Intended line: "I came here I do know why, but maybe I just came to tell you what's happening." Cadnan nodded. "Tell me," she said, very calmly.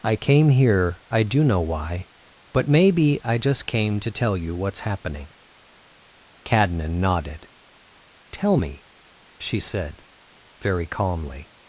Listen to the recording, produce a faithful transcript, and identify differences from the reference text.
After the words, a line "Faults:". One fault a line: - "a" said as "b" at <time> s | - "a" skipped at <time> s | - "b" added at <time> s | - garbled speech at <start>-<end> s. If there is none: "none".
"I came here I do know why, but maybe I just came to tell you what's happening." Cadnan nodded. "Tell me," she said, very calmly.
Faults:
none